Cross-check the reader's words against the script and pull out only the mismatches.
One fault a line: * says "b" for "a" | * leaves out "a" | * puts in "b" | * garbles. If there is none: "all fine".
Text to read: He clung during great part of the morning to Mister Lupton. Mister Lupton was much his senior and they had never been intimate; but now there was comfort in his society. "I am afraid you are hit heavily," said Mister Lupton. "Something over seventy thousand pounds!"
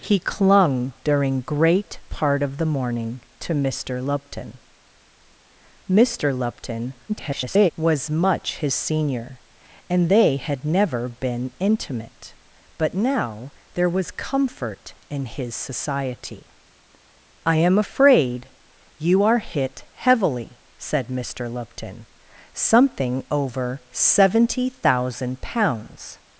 * garbles